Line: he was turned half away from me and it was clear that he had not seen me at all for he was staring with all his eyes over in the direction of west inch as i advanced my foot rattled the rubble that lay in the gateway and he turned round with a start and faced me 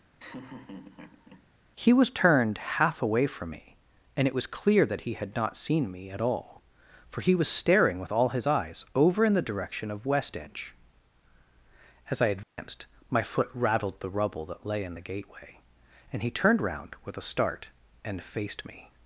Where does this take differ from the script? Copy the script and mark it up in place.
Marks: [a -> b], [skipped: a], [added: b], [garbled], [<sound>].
[laugh] he was turned half away from me and it was clear that he had not seen me at all for he was staring with all his eyes over in the direction of west inch as i advanced [dropout] my foot rattled the rubble that lay in the gateway and he turned round with a start and faced me